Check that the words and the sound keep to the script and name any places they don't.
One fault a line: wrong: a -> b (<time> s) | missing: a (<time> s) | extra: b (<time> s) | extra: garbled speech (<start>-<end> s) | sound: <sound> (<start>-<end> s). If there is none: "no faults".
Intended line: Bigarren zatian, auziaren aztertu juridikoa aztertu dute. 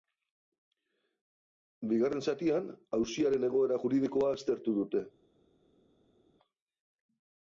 wrong: aztertu -> egoera (3.5 s)